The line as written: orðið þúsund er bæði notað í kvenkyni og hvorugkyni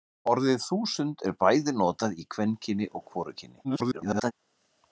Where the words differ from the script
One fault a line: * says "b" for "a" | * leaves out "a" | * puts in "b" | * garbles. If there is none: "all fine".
* garbles